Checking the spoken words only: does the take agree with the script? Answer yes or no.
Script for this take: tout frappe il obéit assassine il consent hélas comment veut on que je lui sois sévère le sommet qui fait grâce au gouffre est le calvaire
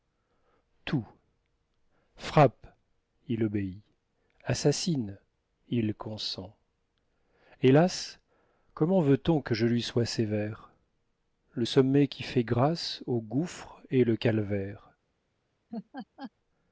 yes